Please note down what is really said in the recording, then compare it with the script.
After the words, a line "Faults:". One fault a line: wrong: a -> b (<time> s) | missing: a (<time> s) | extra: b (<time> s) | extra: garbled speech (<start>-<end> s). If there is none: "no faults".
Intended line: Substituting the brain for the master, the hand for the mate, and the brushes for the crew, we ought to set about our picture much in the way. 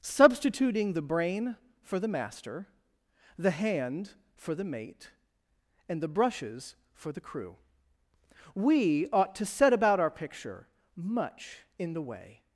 Substituting the brain for the master, the hand for the mate, and the brushes for the crew, we ought to set about our picture much in the way.
Faults:
no faults